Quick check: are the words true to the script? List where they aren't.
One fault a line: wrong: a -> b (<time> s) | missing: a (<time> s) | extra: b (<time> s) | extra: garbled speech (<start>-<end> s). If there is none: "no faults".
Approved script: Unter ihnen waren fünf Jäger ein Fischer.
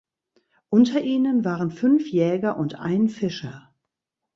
extra: und (2.6 s)